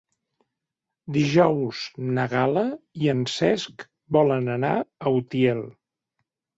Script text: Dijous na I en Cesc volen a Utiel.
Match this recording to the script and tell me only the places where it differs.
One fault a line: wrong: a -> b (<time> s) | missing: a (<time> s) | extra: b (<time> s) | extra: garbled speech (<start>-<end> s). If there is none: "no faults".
extra: Gal·la (2.3 s)
extra: anar (4.6 s)